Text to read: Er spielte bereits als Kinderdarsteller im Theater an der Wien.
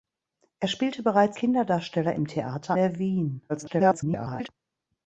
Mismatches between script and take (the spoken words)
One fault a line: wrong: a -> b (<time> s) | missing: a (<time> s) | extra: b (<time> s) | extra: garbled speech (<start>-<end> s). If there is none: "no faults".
missing: als (1.4 s)
missing: an (2.8 s)
extra: garbled speech (3.5-4.5 s)